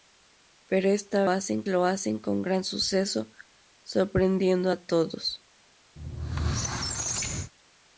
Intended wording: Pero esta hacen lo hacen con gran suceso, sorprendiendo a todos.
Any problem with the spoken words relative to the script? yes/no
no